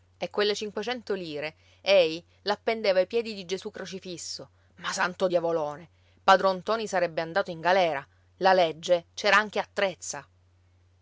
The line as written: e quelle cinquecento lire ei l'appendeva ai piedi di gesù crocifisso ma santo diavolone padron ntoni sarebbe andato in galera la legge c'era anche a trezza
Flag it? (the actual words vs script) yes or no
no